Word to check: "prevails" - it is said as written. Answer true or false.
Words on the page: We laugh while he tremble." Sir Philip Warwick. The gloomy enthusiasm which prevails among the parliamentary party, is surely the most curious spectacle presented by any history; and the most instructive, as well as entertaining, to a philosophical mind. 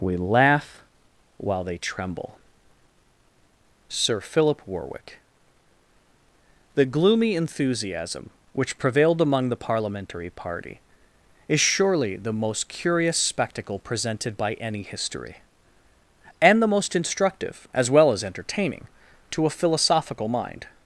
false